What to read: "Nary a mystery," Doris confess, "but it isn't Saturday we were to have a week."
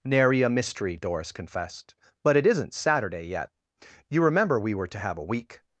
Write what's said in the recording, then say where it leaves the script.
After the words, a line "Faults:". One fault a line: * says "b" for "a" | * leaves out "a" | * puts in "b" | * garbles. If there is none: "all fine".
"Nary a mystery," Doris confessed, "but it isn't Saturday yet. You remember we were to have a week."
Faults:
* says "confessed" for "confess"
* puts in "yet You remember"